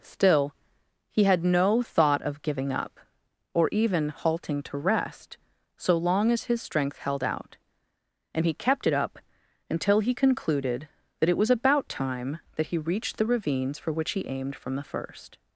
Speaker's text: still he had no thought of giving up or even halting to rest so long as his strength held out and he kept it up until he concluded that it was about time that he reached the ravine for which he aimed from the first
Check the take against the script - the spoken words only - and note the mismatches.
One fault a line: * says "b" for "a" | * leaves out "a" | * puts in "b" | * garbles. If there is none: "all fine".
* says "ravines" for "ravine"